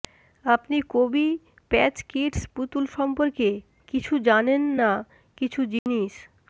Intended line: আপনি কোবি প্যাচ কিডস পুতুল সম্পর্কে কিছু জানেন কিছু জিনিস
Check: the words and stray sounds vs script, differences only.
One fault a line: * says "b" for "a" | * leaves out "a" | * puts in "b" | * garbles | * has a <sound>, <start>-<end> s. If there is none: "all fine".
* puts in "না"
* has a dropout, 5.8-5.9 s